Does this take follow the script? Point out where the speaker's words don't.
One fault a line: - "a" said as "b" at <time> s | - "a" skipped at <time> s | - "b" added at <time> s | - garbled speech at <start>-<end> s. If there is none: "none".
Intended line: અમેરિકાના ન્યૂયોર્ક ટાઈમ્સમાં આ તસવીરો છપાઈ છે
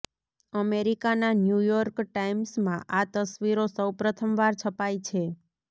- "સૌ પ્રથમવાર" added at 3.7 s